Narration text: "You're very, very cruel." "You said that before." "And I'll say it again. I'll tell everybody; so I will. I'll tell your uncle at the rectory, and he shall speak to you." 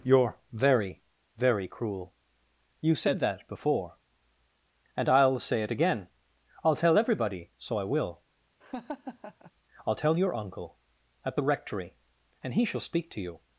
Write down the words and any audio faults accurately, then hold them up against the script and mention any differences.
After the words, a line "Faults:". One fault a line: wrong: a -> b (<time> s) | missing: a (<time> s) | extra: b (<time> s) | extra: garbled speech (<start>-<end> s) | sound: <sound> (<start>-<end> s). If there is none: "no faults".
"You're very, very cruel." "You said that before." "And I'll say it again. I'll tell everybody; so I will. I'll tell your uncle at the rectory, and he shall speak to you."
Faults:
sound: laugh (8.6-9.5 s)